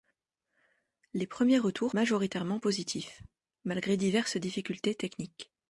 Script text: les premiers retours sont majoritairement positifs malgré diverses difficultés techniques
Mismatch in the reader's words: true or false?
true